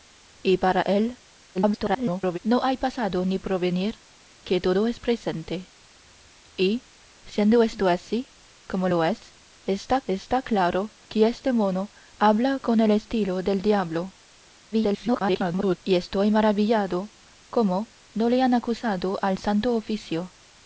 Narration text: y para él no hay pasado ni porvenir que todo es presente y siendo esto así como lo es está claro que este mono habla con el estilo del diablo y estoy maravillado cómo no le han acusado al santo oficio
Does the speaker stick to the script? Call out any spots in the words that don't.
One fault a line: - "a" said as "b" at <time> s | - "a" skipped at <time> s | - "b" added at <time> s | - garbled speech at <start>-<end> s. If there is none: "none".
- garbled speech at 1.5-2.4 s
- "está" added at 10.1 s
- garbled speech at 14.7-15.8 s